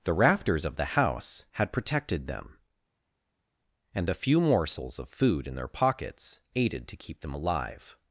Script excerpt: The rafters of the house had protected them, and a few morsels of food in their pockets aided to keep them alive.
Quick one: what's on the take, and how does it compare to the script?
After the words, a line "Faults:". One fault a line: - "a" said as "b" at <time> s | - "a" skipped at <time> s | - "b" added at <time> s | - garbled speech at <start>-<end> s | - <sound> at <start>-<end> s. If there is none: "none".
The rafters of the house had protected them, and the few morsels of food in their pockets aided to keep them alive.
Faults:
- "a" said as "the" at 4.1 s